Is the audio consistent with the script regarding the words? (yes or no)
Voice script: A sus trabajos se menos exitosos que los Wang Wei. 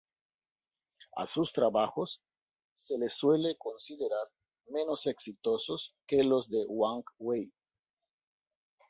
no